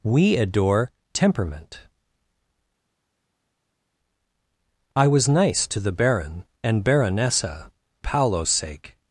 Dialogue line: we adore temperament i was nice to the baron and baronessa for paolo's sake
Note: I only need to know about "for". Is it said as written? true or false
false